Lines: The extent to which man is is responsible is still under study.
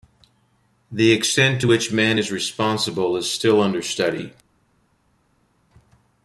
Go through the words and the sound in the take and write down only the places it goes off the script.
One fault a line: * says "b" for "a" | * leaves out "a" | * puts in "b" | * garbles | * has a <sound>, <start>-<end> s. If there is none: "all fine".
* leaves out "is"